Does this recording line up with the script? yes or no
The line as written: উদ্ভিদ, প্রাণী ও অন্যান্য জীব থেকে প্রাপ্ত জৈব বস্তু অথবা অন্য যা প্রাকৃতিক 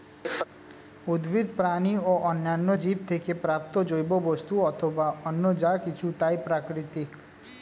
no